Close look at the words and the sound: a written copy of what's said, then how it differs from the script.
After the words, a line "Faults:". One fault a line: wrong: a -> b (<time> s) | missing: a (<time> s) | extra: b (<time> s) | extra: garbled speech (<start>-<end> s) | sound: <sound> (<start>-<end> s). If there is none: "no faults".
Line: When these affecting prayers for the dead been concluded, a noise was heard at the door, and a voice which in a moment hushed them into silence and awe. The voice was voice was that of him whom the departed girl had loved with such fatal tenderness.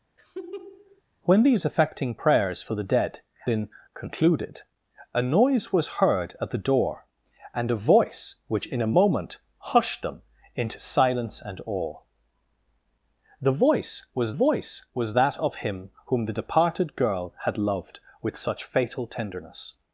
When these affecting prayers for the dead been concluded, a noise was heard at the door, and a voice which in a moment hushed them into silence and awe. The voice was voice was that of him whom the departed girl had loved with such fatal tenderness.
Faults:
sound: laugh (0.2-1.0 s)